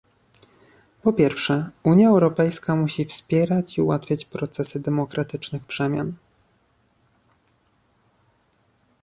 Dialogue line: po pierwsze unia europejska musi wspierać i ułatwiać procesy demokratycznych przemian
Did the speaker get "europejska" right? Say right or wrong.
right